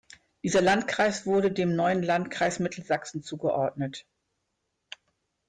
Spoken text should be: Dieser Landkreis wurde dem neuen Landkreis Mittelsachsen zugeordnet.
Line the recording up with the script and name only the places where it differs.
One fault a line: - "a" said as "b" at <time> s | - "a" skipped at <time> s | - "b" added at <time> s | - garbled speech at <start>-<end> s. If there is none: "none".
none